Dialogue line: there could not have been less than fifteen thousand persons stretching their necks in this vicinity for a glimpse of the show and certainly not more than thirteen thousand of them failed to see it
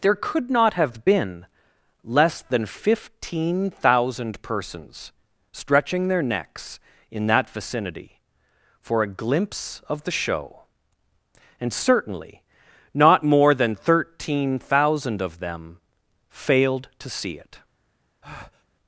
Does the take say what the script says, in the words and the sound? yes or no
no